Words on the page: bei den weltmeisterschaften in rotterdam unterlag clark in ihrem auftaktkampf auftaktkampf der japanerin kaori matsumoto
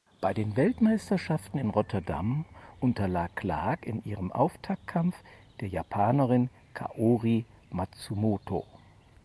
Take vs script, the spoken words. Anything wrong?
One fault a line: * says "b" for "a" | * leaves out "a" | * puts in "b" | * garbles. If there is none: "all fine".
* leaves out "auftaktkampf"